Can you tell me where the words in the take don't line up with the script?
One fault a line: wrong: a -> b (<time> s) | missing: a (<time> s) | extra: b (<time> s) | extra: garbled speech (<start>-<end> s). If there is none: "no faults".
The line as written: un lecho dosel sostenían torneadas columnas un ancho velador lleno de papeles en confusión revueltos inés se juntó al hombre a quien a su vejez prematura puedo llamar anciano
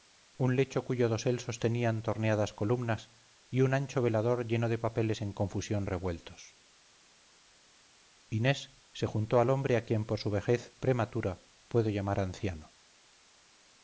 extra: cuyo (0.8 s)
extra: y (3.5 s)
wrong: a -> por (10.0 s)